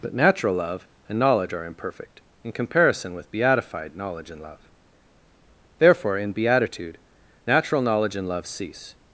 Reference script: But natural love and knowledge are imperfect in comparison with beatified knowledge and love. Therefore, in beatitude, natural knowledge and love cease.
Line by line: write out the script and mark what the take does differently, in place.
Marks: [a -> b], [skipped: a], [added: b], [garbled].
But natural love and knowledge are imperfect in comparison with beatified knowledge and love. Therefore, in beatitude, natural knowledge and love cease.